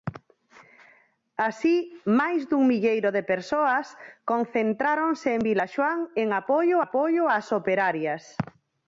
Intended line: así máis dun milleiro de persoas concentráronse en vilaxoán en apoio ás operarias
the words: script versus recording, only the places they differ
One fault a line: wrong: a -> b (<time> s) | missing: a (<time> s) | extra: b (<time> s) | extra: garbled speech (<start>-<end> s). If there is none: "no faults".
extra: apoio (6.9 s)